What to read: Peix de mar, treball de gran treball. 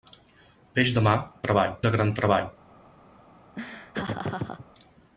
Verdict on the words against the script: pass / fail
pass